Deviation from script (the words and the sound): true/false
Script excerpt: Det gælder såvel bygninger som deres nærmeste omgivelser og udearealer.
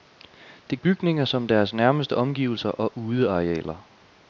true